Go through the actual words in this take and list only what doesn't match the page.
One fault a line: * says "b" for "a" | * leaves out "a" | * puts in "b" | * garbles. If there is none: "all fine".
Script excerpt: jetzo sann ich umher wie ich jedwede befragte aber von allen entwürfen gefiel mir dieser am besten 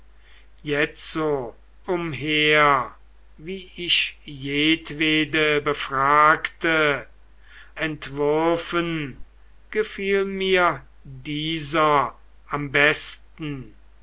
* leaves out "sann ich"
* leaves out "aber von allen"